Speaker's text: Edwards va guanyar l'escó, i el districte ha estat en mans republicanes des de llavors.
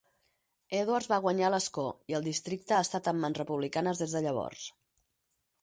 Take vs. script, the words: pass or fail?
pass